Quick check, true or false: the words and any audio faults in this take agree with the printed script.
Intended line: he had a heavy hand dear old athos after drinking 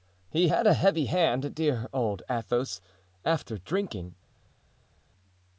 true